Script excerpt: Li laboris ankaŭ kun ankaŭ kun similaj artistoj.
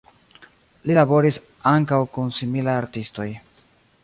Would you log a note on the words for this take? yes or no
yes